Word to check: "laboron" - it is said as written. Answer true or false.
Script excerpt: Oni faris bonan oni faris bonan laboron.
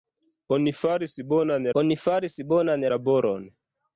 true